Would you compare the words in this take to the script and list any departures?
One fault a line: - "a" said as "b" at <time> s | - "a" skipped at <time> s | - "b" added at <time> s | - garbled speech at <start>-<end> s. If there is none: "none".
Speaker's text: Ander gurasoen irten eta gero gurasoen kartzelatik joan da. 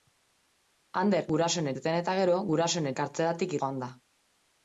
none